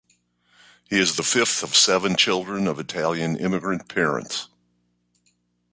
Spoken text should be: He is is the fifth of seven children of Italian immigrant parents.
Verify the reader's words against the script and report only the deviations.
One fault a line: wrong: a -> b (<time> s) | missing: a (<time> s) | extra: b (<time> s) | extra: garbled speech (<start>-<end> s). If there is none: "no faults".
missing: is (1.2 s)